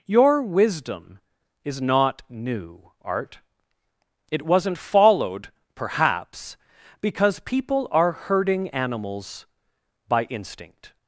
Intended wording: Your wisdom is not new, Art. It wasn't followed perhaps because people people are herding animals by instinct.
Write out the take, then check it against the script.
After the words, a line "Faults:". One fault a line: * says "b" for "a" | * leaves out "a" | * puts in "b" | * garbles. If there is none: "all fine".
Your wisdom is not new, Art. It wasn't followed perhaps because people are herding animals by instinct.
Faults:
* leaves out "people"